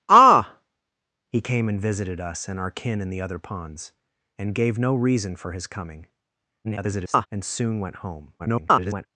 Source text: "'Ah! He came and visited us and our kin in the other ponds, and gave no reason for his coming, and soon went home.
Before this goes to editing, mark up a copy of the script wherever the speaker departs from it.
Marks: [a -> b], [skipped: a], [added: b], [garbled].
"'Ah! He came and visited us and our kin in the other ponds, and gave no reason for his coming, [garbled] and soon went home. [garbled]